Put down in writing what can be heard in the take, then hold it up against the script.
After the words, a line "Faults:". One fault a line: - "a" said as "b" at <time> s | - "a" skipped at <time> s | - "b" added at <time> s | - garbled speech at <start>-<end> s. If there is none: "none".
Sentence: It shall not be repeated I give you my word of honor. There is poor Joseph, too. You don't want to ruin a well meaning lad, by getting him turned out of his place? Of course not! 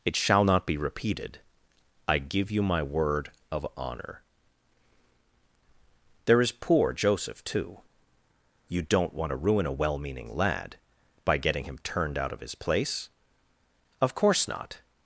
It shall not be repeated I give you my word of honor. There is poor Joseph, too. You don't want to ruin a well meaning lad, by getting him turned out of his place? Of course not!
Faults:
none